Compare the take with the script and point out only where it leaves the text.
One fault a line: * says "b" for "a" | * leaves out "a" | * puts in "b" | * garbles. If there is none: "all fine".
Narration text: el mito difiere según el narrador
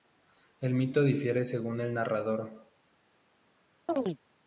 all fine